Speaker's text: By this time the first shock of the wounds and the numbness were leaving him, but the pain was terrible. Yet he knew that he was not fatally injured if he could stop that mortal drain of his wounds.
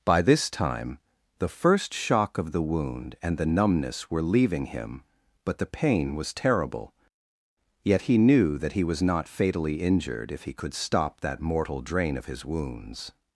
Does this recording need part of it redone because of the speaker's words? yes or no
yes